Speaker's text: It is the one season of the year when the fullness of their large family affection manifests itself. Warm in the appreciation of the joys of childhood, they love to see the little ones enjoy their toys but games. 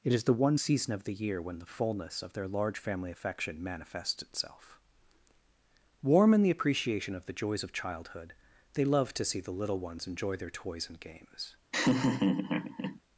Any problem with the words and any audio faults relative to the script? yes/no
yes